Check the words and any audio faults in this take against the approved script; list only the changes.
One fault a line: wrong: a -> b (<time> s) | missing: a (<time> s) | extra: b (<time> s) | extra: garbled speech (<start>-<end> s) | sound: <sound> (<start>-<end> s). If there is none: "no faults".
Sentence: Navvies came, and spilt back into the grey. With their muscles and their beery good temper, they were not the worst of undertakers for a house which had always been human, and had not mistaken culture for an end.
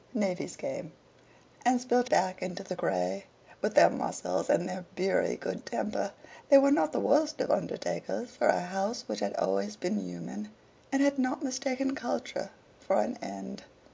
no faults